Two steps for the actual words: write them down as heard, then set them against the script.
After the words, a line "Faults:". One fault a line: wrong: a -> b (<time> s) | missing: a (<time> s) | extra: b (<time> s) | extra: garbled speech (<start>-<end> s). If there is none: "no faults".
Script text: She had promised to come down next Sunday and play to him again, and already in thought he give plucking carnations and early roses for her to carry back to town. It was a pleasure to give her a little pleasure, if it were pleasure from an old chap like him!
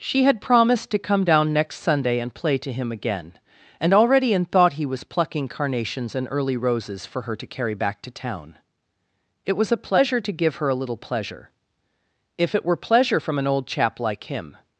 She had promised to come down next Sunday and play to him again, and already in thought he was plucking carnations and early roses for her to carry back to town. It was a pleasure to give her a little pleasure, if it were pleasure from an old chap like him!
Faults:
wrong: give -> was (4.9 s)